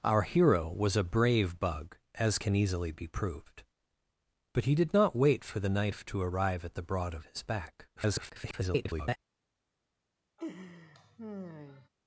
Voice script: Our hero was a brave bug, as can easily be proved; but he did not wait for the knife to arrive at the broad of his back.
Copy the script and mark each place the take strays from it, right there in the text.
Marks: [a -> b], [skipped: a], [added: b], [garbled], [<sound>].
Our hero was a brave bug, as can easily be proved; but he did not wait for the knife to arrive at the broad of his back. [garbled] [laugh]